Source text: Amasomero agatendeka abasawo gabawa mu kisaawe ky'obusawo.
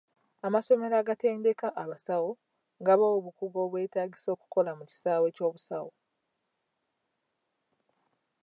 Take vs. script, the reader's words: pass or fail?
fail